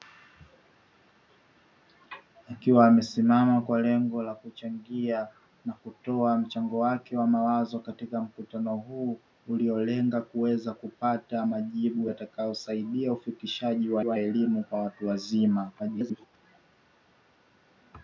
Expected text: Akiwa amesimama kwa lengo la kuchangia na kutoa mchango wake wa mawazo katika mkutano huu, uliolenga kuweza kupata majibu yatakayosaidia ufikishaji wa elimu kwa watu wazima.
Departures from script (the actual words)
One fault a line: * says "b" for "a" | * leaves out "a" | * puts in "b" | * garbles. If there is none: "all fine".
* puts in "wa"
* garbles